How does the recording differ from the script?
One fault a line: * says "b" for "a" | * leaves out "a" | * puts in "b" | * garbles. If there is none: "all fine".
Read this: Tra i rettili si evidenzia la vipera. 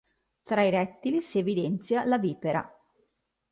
all fine